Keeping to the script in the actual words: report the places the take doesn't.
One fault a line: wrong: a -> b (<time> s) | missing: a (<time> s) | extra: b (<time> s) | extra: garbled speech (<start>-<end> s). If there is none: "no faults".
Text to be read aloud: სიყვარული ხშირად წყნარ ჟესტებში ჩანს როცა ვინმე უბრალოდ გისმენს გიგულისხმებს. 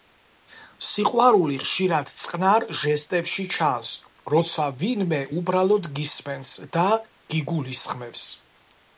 extra: და (6.8 s)